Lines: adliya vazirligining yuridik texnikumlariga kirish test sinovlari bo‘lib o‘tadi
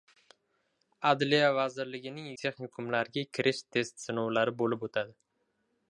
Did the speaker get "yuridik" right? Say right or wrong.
wrong